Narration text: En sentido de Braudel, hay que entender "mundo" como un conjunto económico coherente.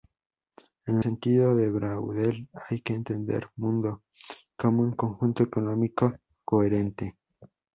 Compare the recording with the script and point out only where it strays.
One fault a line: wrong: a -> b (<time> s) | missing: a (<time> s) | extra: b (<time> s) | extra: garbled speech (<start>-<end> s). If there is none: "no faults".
no faults